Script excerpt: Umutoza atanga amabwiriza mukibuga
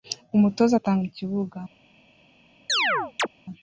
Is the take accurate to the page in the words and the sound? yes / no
no